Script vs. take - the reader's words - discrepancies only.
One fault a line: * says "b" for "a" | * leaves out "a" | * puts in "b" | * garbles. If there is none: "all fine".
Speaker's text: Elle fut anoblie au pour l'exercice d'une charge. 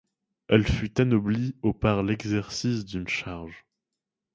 * says "par" for "pour"